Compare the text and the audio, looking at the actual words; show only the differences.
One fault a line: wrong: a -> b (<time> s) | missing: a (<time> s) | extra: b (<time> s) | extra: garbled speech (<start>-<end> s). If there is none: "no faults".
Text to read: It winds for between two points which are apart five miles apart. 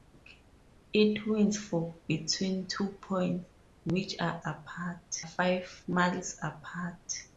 no faults